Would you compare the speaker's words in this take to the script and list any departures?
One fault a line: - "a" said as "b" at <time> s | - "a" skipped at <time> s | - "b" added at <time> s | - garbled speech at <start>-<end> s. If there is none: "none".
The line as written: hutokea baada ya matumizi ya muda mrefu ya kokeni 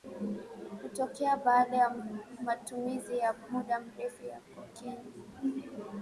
none